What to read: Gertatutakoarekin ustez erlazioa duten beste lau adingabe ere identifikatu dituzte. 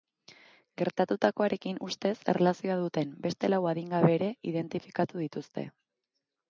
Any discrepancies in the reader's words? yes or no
no